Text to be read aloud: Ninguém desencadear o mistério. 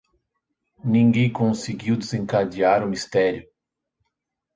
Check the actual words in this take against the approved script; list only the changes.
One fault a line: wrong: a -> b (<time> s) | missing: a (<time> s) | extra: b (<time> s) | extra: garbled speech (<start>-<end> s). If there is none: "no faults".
extra: conseguiu (1.3 s)